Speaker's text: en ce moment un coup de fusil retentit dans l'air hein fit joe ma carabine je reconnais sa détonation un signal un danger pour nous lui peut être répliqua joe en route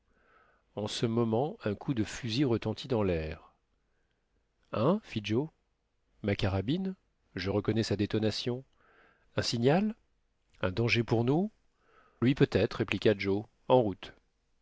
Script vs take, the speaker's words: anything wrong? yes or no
no